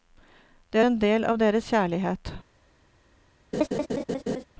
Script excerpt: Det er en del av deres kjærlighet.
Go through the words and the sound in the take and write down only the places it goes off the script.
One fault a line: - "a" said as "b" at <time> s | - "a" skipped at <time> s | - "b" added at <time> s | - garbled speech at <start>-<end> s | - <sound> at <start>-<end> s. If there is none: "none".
- laugh at 3.5-4.4 s